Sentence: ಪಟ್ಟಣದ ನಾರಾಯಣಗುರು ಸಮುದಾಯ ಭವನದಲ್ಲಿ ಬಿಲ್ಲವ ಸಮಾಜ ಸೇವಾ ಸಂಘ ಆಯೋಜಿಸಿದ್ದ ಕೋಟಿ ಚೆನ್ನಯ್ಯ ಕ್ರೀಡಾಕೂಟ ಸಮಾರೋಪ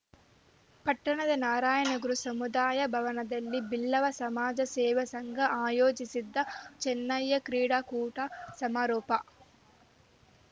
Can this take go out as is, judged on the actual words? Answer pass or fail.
fail